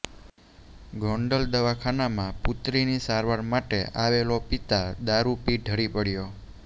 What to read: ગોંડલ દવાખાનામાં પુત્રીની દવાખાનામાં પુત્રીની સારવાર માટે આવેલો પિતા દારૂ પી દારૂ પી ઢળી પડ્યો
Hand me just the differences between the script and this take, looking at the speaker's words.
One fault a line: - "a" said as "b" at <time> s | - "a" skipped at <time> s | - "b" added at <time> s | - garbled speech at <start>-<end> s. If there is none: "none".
- "દવાખાનામાં પુત્રીની" skipped at 3.0 s
- "દારૂ પી" skipped at 5.6 s